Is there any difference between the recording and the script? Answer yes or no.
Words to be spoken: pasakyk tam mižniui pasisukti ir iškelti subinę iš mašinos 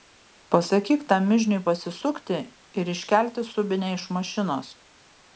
no